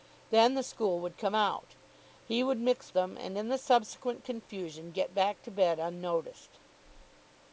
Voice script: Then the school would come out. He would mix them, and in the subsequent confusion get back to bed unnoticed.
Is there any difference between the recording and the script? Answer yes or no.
no